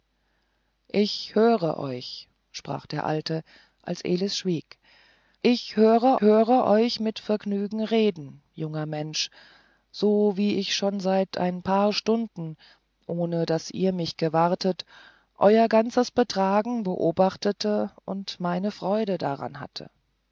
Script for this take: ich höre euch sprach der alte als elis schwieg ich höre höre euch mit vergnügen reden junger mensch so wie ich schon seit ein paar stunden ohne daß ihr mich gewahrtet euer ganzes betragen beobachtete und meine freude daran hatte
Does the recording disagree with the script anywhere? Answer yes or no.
no